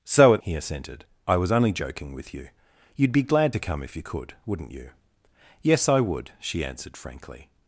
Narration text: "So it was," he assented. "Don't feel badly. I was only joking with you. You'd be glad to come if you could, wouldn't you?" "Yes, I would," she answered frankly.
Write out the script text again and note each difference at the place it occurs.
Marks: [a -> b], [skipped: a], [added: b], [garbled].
"So it [skipped: was,"] he assented. [skipped: "Don't feel badly.] I was only joking with you. You'd be glad to come if you could, wouldn't you?" "Yes, I would," she answered frankly.